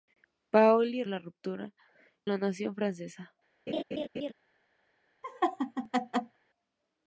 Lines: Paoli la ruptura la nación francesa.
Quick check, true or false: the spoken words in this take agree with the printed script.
true